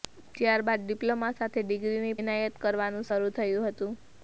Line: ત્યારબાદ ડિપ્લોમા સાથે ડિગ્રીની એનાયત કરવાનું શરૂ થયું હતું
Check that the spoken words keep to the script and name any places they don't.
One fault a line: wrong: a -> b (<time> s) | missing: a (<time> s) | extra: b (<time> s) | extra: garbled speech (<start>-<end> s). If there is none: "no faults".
no faults